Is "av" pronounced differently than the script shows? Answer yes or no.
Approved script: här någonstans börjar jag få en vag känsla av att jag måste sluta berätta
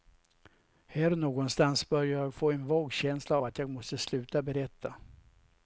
yes